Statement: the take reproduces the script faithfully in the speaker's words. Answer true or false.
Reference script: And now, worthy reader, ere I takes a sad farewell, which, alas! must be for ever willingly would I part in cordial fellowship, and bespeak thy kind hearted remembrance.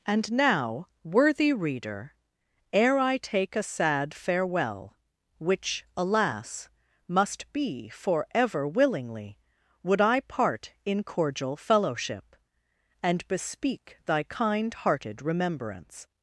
false